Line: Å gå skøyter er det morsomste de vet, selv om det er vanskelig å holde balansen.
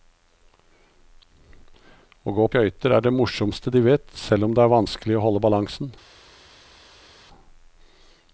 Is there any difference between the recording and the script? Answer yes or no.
no